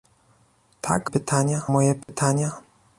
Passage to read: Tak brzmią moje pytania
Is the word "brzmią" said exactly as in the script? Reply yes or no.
no